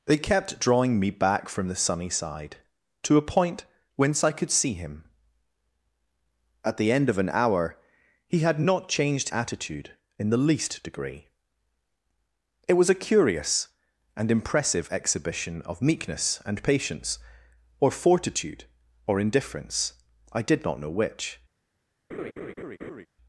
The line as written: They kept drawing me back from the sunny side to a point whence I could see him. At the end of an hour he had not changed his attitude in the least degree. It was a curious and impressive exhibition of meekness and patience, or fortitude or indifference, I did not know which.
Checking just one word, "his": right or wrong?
wrong